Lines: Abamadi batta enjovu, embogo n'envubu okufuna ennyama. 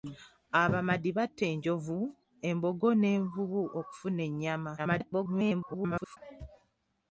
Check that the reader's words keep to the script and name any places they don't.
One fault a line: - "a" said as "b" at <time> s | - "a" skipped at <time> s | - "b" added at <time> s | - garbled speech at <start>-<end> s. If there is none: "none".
- garbled speech at 4.8-6.2 s